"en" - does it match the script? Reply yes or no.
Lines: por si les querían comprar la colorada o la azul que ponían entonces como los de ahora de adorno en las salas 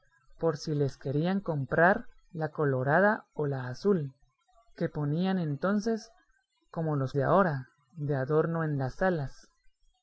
yes